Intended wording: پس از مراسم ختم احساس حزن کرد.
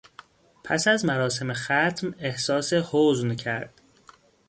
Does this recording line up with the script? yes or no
yes